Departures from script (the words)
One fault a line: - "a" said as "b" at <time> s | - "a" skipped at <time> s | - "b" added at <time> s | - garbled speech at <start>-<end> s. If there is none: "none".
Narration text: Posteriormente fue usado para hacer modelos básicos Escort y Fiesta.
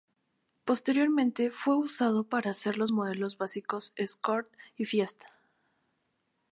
- "los" added at 2.8 s